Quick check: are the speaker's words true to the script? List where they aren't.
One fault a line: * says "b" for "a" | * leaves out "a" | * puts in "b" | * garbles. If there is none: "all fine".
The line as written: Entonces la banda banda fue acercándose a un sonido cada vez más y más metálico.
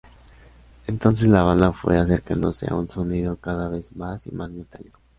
* leaves out "banda"